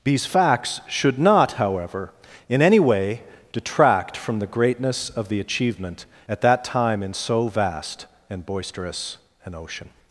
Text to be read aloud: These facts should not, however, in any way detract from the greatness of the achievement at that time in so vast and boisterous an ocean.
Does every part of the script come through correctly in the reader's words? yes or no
yes